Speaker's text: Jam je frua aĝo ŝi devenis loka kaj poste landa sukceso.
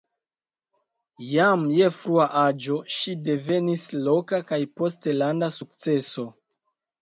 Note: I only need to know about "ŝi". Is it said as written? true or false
true